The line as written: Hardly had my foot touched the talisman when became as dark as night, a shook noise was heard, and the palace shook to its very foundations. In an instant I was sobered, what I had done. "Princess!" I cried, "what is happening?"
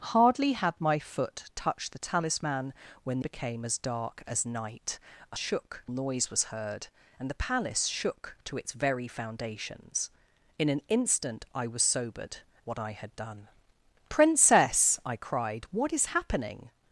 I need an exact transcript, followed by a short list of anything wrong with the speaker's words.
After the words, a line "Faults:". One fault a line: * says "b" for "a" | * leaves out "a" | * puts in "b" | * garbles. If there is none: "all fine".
Hardly had my foot touched the talisman when became as dark as night, a shook noise was heard, and the palace shook to its very foundations. In an instant I was sobered, what I had done. "Princess!" I cried, "what is happening?"
Faults:
all fine